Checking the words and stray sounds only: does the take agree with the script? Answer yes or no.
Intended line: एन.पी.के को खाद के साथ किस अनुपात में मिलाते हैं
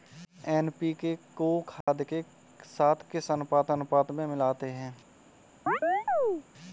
no